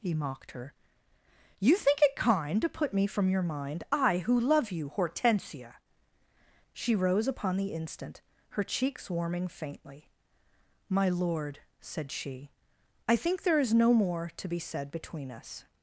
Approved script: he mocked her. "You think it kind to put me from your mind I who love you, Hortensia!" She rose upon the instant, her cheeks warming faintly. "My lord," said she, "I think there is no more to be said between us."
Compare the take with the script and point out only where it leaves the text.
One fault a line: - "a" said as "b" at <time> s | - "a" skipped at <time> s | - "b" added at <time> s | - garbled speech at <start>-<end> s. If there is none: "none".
none